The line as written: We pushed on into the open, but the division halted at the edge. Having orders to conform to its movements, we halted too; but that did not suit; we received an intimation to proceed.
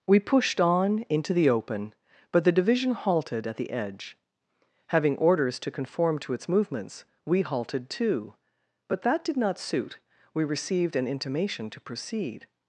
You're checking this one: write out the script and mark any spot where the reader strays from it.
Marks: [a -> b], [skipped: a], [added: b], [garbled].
We pushed on into the open, but the division halted at the edge. Having orders to conform to its movements, we halted too; but that did not suit; we received an intimation to proceed.